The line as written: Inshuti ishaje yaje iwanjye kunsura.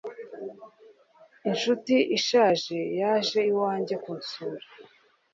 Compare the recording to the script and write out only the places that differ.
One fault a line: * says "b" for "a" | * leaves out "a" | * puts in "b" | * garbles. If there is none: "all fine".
all fine